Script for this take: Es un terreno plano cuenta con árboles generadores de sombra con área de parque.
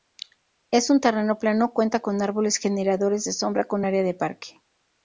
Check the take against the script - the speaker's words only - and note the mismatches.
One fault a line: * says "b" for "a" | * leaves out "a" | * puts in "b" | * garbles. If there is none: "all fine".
all fine